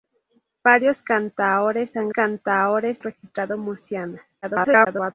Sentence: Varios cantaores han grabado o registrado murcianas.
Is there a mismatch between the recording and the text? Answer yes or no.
yes